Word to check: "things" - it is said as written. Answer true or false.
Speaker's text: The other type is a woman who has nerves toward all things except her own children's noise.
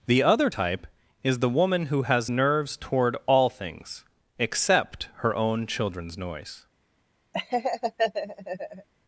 true